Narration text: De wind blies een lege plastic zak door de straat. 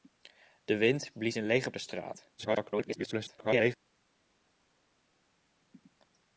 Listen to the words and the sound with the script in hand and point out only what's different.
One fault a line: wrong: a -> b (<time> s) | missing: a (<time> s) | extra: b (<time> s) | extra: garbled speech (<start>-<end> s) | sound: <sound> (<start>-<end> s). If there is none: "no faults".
missing: plastic zak door (1.7 s)
extra: garbled speech (2.4-3.8 s)